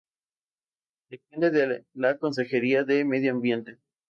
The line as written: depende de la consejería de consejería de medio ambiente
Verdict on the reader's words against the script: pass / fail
fail